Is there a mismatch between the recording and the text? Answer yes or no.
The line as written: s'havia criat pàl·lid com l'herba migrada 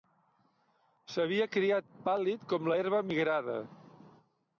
no